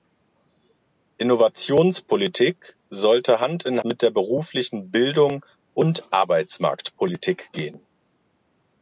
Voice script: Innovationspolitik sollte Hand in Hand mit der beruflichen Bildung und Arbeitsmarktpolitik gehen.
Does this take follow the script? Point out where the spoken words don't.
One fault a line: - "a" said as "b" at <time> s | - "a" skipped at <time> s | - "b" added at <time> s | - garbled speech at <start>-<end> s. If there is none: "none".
- "Hand" skipped at 3.8 s